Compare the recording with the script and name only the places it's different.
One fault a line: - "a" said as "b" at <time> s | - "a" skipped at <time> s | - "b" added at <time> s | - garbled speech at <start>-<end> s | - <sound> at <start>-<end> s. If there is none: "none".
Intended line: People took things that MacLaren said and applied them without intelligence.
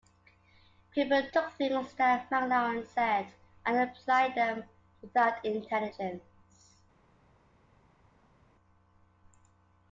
none